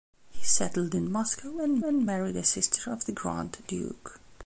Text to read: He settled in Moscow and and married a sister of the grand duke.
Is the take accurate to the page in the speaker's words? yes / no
yes